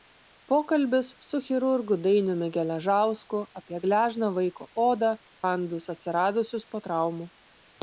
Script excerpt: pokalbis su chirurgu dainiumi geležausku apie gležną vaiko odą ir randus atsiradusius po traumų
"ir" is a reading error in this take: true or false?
true